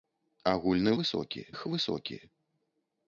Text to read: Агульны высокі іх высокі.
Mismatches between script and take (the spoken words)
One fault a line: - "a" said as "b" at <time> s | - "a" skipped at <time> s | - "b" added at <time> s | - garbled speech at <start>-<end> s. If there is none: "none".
none